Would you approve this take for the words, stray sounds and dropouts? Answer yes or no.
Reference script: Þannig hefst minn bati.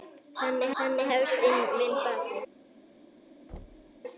no